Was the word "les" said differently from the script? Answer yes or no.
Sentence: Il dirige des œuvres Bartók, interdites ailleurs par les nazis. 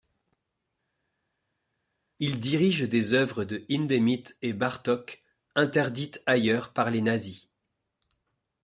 no